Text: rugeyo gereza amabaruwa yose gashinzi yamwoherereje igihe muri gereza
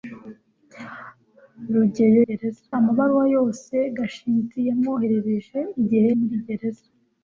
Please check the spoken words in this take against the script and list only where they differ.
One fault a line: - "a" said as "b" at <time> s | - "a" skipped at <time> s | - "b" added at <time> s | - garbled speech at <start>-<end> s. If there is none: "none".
none